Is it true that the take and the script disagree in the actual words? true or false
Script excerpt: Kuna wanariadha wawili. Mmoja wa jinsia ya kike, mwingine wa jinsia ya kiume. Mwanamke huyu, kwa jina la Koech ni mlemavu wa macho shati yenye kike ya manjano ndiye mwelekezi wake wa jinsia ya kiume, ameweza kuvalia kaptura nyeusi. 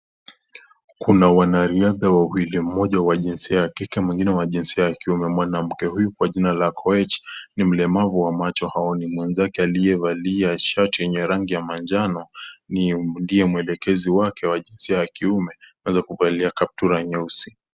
true